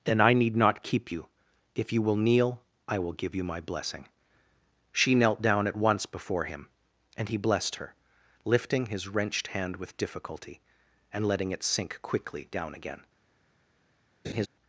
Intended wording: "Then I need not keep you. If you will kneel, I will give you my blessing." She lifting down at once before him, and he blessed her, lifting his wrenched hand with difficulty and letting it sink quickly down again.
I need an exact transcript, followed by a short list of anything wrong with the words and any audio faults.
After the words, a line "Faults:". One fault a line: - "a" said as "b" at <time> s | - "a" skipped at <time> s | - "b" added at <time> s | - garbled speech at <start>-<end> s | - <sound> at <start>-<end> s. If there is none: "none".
"Then I need not keep you. If you will kneel, I will give you my blessing." She knelt down at once before him, and he blessed her, lifting his wrenched hand with difficulty and letting it sink quickly down again.
Faults:
- "lifting" said as "knelt" at 5.1 s
- laugh at 14.2-14.5 s